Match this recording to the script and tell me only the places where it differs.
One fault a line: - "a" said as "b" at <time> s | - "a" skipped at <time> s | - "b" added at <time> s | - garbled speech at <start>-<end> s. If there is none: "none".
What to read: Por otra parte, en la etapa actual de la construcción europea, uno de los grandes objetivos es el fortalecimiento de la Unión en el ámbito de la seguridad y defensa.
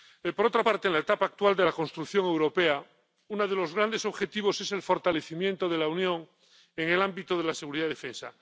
none